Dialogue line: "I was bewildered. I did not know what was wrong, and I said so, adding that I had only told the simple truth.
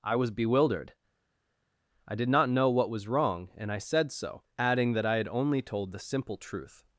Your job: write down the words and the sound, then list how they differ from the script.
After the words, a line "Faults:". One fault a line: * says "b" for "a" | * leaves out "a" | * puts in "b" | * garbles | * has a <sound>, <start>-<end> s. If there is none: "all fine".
"I was bewildered. I did not know what was wrong, and I said so, adding that I had only told the simple truth.
Faults:
all fine